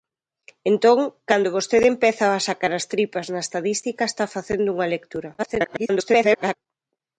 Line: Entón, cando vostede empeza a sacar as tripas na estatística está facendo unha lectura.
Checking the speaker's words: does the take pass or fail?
fail